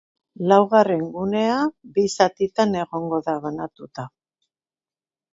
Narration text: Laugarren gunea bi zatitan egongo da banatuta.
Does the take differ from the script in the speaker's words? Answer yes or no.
no